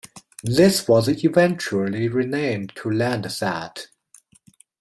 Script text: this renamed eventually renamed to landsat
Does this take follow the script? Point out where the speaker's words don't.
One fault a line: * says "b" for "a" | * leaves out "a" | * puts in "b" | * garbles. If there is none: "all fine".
* says "was" for "renamed"